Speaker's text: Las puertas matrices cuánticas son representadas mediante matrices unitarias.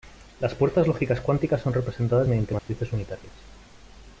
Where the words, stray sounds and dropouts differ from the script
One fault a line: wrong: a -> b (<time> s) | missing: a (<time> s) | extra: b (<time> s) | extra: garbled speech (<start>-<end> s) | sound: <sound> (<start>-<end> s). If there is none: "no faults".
wrong: matrices -> lógicas (0.9 s)
sound: dropout (2.6-2.7 s)